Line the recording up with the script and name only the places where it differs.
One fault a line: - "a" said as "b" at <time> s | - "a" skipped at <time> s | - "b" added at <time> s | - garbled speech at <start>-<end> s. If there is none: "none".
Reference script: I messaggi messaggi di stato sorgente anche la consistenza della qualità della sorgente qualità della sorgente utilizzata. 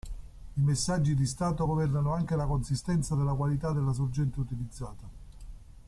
- "messaggi" skipped at 1.1 s
- "sorgente" said as "governano" at 1.6 s
- "qualità della sorgente" skipped at 4.4 s